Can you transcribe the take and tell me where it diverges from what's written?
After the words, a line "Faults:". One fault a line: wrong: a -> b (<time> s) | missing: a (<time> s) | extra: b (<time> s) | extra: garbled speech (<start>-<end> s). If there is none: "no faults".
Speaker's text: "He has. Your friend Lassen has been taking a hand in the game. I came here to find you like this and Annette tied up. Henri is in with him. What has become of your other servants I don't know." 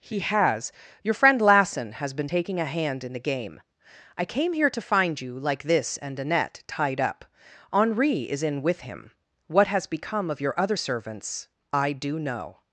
"He has. Your friend Lassen has been taking a hand in the game. I came here to find you like this and Annette tied up. Henri is in with him. What has become of your other servants I do know."
Faults:
wrong: don't -> do (11.9 s)